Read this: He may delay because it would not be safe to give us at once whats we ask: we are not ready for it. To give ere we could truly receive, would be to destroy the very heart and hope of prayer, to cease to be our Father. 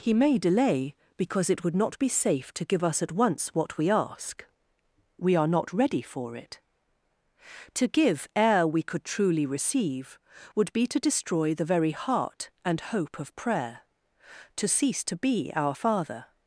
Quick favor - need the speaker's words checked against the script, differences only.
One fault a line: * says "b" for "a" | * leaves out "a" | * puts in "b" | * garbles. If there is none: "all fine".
* says "what" for "whats"